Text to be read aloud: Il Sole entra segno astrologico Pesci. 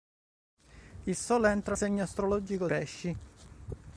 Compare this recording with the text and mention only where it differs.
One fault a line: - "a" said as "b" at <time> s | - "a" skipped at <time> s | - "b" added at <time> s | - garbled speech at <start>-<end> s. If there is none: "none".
none